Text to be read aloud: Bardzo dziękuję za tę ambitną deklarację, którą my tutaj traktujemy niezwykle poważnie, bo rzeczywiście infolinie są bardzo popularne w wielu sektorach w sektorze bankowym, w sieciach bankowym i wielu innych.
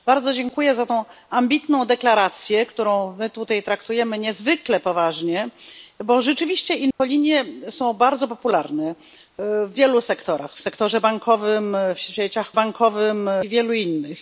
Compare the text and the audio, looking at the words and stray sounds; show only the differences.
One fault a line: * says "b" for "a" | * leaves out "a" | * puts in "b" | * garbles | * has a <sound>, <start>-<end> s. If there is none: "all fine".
* has a dropout, 6.9-7.0 s